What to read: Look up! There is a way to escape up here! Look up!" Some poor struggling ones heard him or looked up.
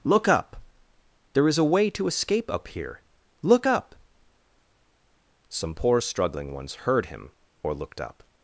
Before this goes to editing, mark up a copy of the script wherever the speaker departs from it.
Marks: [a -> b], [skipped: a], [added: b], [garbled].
Look up! There is a way to escape up here! Look up!" Some poor struggling ones heard him or looked up.